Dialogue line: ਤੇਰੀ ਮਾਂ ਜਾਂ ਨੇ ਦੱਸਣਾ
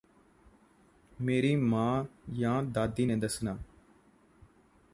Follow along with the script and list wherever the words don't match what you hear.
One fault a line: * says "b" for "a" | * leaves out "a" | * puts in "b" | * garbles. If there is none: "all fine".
* says "ਮੇਰੀ" for "ਤੇਰੀ"
* puts in "ਦਾਦੀ"